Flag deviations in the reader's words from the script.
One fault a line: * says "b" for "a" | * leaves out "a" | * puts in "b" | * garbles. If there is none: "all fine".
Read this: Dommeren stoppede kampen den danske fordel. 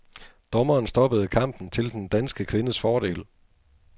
* puts in "til"
* puts in "kvindes"